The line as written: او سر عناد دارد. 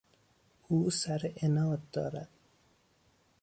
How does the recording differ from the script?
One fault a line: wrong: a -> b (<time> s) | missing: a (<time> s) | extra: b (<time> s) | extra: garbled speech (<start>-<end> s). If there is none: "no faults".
no faults